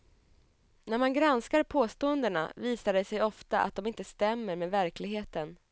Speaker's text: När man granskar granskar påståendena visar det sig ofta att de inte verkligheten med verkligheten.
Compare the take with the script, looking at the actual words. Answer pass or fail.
fail